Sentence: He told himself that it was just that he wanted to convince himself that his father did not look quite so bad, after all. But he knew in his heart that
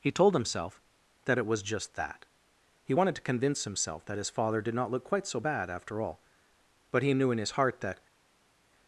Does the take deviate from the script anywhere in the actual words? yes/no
no